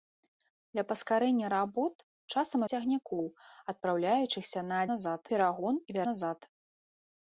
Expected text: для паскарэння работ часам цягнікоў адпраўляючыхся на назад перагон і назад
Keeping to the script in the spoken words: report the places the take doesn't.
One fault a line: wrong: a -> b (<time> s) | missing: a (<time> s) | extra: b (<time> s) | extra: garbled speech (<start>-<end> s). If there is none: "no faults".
no faults